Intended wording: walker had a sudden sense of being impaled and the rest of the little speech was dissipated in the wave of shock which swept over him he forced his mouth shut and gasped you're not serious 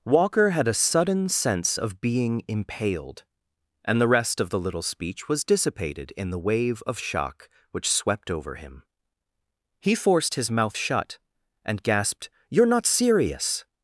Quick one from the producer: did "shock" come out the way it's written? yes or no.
yes